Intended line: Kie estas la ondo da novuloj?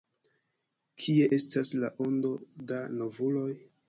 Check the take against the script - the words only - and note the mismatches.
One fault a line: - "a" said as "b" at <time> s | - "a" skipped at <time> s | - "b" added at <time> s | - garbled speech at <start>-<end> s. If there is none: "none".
none